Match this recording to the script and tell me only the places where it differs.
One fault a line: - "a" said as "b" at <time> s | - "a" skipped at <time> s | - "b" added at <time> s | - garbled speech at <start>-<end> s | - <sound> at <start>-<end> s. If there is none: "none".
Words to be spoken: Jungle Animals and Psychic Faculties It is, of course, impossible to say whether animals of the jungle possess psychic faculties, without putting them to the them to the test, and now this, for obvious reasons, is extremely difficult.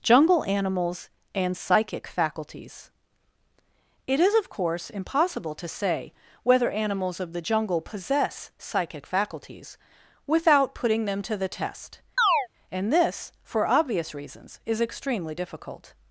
- "them to the" skipped at 11.5 s
- chirp at 12.2-12.5 s
- "now" skipped at 12.9 s